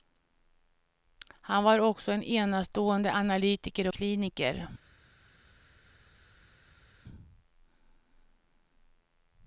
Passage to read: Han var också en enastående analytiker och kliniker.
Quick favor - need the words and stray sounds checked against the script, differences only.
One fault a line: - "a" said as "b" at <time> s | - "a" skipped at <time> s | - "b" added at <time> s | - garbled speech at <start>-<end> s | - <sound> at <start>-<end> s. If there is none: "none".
- "och" skipped at 3.9 s